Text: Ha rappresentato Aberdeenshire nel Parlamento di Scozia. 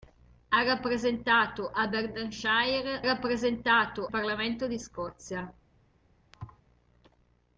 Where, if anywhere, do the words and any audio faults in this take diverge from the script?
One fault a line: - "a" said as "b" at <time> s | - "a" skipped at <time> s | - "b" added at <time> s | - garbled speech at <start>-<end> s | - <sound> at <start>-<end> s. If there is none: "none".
- "nel" said as "rappresentato" at 3.0 s
- thud at 6.3-6.6 s